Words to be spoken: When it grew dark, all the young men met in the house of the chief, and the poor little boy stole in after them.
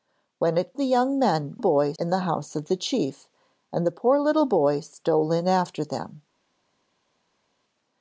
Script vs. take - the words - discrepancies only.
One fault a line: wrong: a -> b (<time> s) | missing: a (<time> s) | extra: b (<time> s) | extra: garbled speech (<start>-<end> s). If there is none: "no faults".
missing: grew dark all (0.7 s)
wrong: met -> boy (1.6 s)